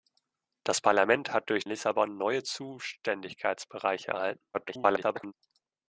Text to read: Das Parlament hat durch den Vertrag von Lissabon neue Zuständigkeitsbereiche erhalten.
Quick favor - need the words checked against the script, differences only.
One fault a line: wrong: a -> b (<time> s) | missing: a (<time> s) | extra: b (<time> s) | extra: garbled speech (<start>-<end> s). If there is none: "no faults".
missing: den Vertrag von (1.7 s)
extra: garbled speech (4.5-5.3 s)